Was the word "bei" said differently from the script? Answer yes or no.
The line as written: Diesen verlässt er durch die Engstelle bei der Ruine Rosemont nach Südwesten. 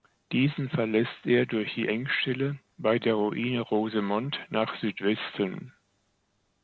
no